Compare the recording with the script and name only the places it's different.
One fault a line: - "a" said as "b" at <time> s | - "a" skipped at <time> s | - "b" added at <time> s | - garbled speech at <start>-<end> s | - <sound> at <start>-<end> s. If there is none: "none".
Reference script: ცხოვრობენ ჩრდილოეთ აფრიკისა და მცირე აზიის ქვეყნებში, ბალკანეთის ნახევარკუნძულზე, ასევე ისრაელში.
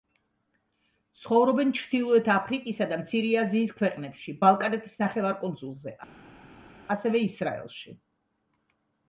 none